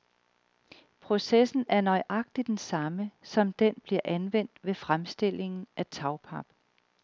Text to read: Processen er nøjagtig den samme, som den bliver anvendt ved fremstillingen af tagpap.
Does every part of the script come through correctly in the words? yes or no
yes